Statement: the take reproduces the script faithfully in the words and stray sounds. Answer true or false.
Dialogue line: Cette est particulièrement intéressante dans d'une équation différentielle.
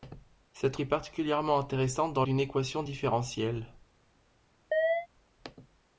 false